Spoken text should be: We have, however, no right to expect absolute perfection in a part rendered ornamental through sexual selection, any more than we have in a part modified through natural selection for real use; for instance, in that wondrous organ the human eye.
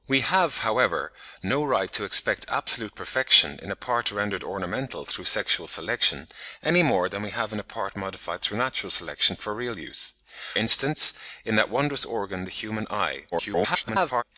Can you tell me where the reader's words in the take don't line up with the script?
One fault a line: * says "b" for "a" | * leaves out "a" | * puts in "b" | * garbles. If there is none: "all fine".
* leaves out "for"
* garbles